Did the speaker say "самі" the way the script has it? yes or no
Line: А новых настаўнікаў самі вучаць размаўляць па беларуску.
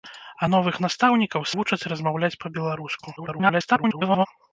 no